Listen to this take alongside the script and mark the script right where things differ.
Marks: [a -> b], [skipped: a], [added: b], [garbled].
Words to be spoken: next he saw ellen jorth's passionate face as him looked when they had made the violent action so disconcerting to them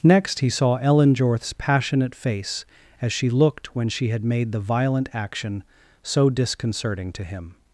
next he saw ellen jorth's passionate face as [him -> she] looked when [they -> she] had made the violent action so disconcerting to [them -> him]